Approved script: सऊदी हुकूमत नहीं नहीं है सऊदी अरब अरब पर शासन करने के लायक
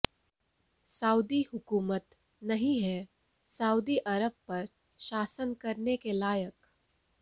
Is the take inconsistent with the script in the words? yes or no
yes